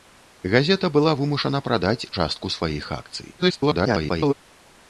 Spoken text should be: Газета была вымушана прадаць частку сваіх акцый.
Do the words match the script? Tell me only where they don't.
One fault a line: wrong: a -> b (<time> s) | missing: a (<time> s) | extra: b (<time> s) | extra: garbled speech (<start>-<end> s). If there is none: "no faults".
extra: garbled speech (3.4-4.3 s)